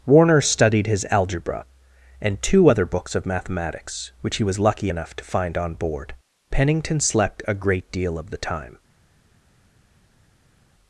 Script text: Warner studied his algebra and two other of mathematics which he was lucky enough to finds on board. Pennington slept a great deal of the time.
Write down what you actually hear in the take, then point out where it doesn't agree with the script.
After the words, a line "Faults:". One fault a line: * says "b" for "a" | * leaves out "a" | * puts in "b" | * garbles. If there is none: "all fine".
Warner studied his algebra and two other books of mathematics which he was lucky enough to find on board. Pennington slept a great deal of the time.
Faults:
* puts in "books"
* says "find" for "finds"